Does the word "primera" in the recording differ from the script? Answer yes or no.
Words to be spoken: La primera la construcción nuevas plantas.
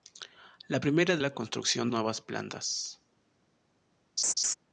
no